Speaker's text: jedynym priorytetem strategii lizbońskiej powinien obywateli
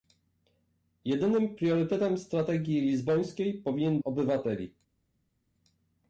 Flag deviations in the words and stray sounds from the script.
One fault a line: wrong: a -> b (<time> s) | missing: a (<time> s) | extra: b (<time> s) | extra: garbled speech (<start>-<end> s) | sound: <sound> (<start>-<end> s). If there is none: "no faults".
no faults